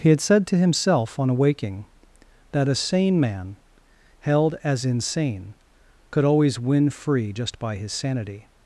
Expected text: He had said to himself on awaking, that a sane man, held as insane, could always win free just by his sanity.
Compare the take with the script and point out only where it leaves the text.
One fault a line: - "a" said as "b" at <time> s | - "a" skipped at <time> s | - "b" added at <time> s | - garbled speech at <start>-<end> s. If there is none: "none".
none